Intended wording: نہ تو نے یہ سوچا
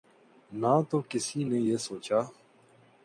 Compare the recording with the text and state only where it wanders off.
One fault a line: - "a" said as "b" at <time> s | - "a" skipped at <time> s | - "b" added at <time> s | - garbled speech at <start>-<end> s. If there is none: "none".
- "کسی" added at 1.1 s